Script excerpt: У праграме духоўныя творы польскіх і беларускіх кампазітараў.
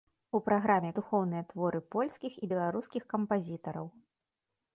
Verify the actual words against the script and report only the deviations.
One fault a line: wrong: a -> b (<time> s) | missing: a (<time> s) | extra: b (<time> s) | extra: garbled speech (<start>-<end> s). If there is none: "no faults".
no faults